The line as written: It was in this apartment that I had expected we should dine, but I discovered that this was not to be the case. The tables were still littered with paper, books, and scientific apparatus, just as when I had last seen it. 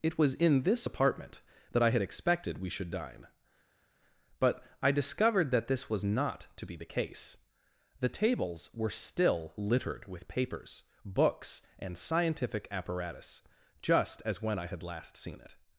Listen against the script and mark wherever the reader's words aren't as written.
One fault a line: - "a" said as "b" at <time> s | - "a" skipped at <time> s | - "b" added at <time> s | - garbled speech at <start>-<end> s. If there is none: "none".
- "paper" said as "papers" at 10.3 s